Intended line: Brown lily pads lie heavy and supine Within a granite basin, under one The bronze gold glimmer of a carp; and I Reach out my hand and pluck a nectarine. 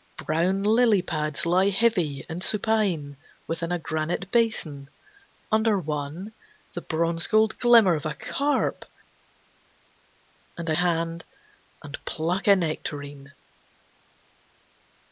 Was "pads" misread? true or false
false